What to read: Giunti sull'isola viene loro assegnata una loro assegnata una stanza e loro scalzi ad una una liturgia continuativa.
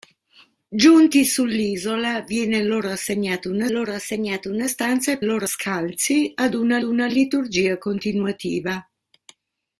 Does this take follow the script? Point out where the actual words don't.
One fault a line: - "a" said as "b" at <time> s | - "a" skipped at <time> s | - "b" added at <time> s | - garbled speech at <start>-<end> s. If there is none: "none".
none